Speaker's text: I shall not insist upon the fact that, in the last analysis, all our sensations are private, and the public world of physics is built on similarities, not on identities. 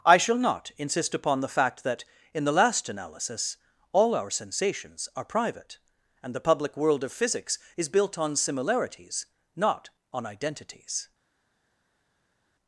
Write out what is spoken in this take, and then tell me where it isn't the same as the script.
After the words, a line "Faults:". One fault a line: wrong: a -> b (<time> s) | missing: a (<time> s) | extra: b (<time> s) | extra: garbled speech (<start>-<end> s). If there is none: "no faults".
I shall not insist upon the fact that, in the last analysis, all our sensations are private, and the public world of physics is built on similarities, not on identities.
Faults:
no faults